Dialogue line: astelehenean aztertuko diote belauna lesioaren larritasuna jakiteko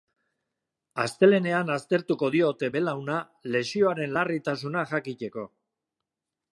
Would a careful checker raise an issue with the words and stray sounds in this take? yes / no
no